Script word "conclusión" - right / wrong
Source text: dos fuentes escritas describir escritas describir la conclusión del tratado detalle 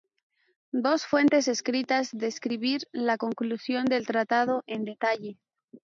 right